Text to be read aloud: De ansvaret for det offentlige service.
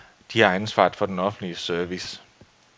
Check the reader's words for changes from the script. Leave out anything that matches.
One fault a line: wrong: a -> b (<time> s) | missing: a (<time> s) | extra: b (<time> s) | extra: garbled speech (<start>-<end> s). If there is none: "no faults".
extra: har (0.4 s)
wrong: det -> den (1.1 s)